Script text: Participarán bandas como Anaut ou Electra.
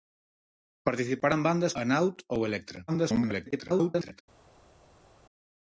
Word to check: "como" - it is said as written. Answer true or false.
false